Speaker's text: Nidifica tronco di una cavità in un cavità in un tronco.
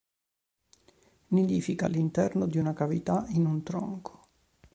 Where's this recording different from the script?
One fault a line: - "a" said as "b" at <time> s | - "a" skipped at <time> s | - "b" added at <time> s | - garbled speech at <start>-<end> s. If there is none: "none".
- "tronco" said as "all'interno" at 1.8 s
- "cavità in un" skipped at 3.6 s